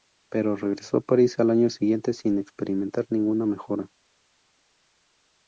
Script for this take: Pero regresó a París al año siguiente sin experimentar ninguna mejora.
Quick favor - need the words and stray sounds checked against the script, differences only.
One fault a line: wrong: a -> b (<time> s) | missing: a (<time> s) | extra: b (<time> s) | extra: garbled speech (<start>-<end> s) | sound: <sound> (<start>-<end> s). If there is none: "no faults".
no faults